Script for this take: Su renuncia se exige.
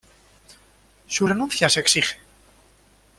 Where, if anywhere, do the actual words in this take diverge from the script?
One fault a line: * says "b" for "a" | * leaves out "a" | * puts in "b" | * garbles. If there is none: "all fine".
all fine